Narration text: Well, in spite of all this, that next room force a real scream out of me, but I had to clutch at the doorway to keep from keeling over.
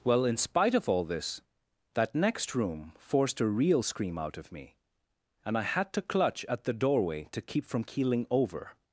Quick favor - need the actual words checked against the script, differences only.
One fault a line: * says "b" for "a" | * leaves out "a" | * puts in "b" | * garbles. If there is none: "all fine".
* says "forced" for "force"
* says "and" for "but"